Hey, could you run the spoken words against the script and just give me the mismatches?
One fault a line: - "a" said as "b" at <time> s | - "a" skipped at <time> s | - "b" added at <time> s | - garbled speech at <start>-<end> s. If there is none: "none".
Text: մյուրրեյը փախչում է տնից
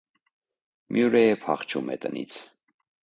none